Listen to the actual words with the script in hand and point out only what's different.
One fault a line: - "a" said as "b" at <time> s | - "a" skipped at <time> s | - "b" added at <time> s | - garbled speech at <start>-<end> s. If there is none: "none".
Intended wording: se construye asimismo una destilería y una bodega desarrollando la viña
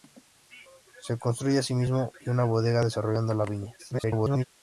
- "una destilería" skipped at 2.1 s
- garbled speech at 3.8-4.4 s